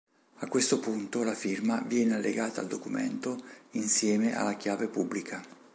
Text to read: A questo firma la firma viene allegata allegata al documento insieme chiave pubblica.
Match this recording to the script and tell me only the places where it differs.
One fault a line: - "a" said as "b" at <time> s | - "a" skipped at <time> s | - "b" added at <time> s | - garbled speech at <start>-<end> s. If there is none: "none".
- "firma" said as "punto" at 0.8 s
- "allegata" skipped at 2.6 s
- "alla" added at 4.3 s